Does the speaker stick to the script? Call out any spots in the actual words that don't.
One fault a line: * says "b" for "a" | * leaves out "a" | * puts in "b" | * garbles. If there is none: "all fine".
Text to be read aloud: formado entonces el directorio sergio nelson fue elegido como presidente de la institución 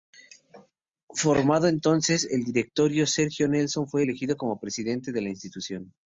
all fine